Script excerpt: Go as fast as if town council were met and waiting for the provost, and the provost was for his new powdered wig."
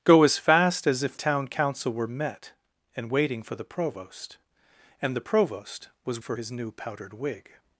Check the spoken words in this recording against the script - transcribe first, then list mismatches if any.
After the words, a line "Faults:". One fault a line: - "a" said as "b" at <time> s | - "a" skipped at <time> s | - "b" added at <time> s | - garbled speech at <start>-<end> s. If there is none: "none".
Go as fast as if town council were met and waiting for the provost, and the provost was for his new powdered wig."
Faults:
none